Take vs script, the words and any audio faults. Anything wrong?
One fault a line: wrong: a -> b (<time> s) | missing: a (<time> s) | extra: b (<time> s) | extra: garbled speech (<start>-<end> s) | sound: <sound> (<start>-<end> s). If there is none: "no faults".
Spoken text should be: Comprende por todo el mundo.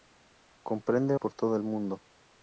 no faults